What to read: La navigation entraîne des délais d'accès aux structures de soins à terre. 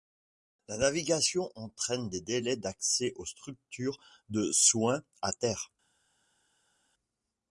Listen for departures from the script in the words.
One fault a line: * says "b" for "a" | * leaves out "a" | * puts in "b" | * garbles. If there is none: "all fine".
all fine